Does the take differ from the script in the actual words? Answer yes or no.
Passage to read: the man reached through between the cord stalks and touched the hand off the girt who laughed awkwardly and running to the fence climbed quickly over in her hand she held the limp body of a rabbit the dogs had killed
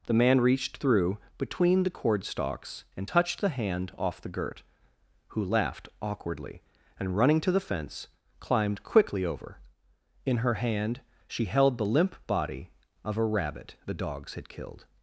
no